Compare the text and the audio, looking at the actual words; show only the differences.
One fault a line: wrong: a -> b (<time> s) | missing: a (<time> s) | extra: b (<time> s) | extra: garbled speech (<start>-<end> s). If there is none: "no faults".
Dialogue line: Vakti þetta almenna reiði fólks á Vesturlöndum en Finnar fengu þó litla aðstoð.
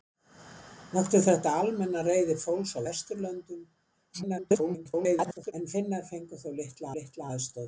extra: garbled speech (4.1-5.5 s)
extra: litla (7.0 s)